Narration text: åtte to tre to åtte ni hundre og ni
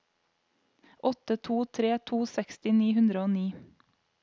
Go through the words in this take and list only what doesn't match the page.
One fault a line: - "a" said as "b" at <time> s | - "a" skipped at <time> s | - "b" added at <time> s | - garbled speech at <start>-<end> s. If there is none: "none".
- "åtte" said as "seksti" at 2.4 s